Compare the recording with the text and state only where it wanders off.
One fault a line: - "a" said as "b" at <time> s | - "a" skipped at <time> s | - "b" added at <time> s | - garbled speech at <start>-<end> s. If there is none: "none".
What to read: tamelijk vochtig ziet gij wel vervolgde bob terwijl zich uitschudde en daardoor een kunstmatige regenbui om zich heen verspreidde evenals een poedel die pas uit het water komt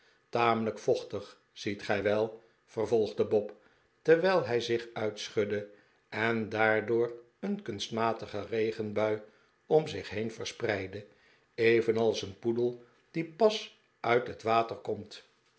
- "hij" added at 4.5 s